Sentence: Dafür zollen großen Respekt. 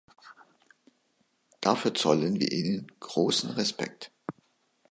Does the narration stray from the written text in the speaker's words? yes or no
yes